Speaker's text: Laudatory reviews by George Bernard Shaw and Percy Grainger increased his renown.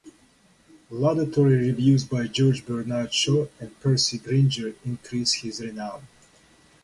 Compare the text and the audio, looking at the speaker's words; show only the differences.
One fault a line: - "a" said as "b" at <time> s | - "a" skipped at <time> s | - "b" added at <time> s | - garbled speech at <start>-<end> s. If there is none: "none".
none